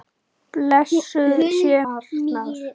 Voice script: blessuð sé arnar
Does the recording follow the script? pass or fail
pass